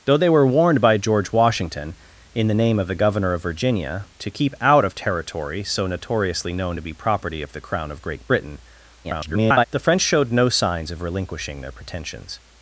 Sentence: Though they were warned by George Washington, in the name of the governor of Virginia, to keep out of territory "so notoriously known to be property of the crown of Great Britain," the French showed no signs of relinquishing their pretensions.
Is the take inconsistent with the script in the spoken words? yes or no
yes